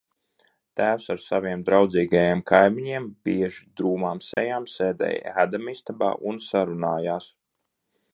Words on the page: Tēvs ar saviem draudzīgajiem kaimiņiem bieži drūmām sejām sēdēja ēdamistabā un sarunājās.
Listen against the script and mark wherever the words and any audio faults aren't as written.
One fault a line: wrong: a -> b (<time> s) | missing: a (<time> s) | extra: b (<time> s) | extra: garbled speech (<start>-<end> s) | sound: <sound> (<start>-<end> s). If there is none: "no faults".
sound: dropout (4.3-4.4 s)